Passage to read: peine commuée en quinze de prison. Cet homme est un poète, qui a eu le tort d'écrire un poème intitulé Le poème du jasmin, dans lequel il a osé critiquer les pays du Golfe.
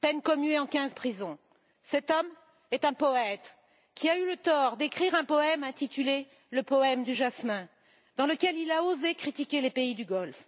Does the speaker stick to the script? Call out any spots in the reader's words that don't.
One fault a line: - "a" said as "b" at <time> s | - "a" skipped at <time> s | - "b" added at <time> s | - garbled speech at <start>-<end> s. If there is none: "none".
none